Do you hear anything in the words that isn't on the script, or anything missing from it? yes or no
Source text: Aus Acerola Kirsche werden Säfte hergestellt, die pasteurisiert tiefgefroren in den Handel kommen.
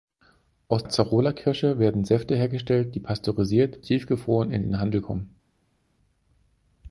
no